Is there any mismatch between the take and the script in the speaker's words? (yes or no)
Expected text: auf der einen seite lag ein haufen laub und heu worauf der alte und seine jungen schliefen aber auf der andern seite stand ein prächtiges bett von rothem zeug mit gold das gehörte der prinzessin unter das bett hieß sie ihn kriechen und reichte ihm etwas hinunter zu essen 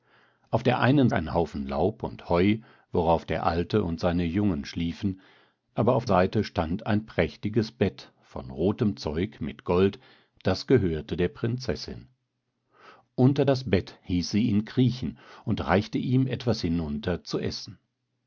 yes